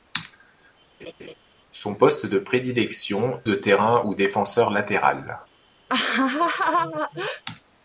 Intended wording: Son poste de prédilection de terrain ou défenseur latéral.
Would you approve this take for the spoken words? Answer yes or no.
yes